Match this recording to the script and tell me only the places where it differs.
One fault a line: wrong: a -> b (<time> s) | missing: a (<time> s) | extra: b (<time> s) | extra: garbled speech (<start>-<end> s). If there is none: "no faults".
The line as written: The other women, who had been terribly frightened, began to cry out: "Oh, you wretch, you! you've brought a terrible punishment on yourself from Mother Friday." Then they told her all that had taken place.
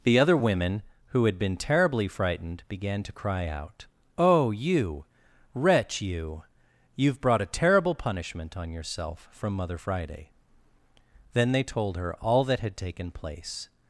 no faults